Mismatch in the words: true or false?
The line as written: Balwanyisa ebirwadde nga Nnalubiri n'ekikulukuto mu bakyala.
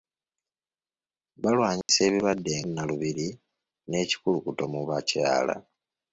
true